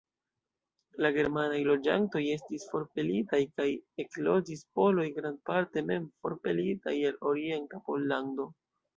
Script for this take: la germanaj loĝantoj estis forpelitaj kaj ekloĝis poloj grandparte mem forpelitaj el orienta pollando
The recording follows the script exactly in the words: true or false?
true